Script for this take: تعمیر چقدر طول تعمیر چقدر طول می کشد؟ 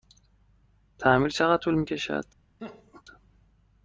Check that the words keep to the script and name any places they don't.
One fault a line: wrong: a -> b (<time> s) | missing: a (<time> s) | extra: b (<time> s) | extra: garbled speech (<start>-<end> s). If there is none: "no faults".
missing: تعمیر چقدر طول (1.7 s)